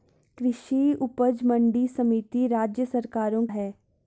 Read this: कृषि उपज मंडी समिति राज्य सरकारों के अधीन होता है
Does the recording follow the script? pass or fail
fail